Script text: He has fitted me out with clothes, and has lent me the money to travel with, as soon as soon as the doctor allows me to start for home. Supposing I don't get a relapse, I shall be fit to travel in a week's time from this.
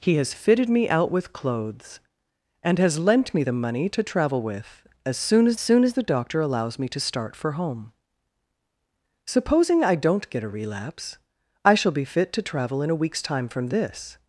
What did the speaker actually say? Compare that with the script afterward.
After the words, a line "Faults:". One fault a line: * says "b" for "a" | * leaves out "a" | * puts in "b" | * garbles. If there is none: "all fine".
He has fitted me out with clothes, and has lent me the money to travel with, as soon as soon as the doctor allows me to start for home. Supposing I don't get a relapse, I shall be fit to travel in a week's time from this.
Faults:
all fine